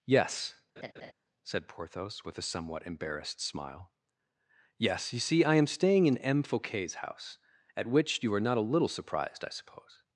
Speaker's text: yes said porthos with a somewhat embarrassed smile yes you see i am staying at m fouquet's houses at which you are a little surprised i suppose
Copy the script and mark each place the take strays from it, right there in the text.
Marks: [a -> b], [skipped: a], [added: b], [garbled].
yes said porthos with a somewhat embarrassed smile yes you see i am staying [at -> in] m fouquet's [houses -> house] at which you are [added: not] a little surprised i suppose